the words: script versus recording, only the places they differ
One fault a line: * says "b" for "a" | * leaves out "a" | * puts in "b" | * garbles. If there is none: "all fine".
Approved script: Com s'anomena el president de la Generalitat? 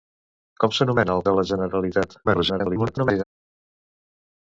* leaves out "president"
* garbles